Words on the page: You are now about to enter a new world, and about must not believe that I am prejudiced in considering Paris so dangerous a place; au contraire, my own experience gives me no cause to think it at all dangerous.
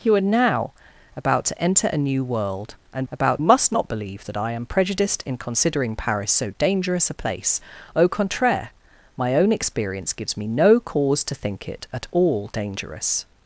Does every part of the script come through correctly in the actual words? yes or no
yes